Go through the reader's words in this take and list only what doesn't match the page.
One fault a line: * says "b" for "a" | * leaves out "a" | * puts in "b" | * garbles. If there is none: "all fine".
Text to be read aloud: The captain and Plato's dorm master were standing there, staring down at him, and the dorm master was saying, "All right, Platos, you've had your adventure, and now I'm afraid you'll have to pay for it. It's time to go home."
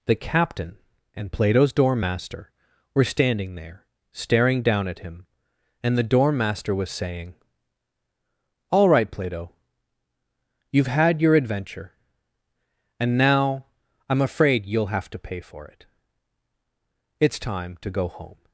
* says "Plato" for "Platos"